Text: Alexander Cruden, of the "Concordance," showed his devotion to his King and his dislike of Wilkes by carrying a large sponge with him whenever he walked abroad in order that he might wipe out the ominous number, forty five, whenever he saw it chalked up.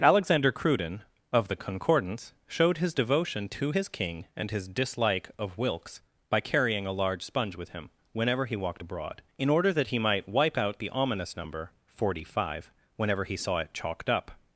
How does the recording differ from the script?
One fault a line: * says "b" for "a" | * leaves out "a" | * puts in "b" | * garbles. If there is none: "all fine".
all fine